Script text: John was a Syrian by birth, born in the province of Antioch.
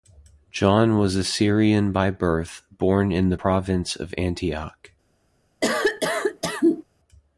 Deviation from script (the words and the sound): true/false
true